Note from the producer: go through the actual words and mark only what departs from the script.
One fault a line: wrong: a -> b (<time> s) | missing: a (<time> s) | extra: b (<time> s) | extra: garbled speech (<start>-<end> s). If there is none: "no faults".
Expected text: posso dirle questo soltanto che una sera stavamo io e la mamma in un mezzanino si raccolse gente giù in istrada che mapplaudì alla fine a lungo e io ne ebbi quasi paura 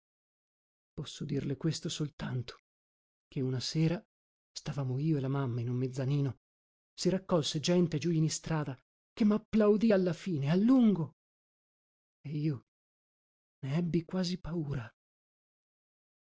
no faults